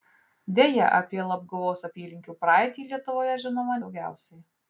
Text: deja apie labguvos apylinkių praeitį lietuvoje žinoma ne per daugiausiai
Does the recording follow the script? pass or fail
fail